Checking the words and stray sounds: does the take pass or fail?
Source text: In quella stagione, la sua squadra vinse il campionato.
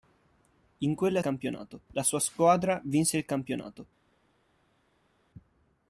fail